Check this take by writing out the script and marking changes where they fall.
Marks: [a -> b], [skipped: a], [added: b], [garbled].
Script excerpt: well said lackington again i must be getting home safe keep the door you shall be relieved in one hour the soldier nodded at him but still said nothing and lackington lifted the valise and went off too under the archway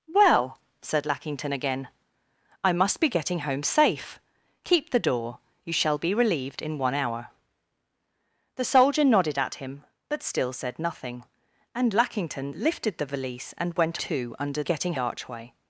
well said lackington again i must be getting home safe keep the door you shall be relieved in one hour the soldier nodded at him but still said nothing and lackington lifted the valise and went [skipped: off] too under [the -> getting] archway